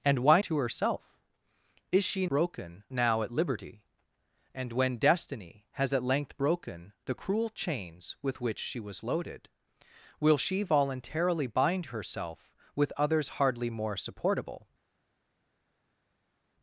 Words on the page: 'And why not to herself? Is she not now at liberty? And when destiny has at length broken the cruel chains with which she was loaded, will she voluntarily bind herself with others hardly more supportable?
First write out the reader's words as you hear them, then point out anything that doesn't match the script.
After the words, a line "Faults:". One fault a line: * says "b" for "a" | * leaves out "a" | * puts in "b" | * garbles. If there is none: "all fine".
'And why to herself? Is she broken now at liberty? And when destiny has at length broken the cruel chains with which she was loaded, will she voluntarily bind herself with others hardly more supportable?
Faults:
* leaves out "not"
* says "broken" for "not"